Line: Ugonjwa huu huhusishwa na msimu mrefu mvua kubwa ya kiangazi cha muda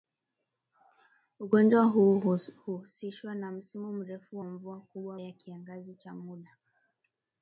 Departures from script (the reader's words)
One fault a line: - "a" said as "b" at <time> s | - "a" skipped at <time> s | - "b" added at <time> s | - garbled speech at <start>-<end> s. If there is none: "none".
none